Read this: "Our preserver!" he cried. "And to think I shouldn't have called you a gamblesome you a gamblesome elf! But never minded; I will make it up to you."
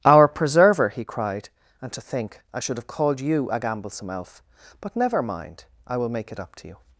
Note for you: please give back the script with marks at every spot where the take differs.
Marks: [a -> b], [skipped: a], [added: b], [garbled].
"Our preserver!" he cried. "And to think I [shouldn't -> should] have called you a gamblesome [skipped: you a gamblesome] elf! But never [minded; -> mind] I will make it up to you."